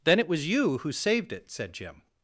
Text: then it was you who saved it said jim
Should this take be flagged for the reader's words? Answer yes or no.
no